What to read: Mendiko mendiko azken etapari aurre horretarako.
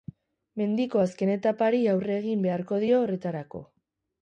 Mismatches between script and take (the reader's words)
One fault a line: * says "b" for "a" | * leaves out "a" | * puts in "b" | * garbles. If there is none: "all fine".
* leaves out "mendiko"
* puts in "egin beharko dio"